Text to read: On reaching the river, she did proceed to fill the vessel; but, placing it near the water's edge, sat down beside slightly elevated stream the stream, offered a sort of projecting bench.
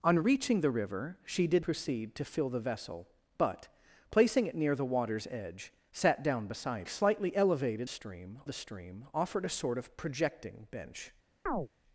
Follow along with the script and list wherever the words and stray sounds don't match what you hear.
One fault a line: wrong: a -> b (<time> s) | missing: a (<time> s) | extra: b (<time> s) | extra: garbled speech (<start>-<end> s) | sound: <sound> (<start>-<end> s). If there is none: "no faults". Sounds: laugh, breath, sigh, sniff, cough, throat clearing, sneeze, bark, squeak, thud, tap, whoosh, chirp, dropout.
sound: chirp (11.5-11.7 s)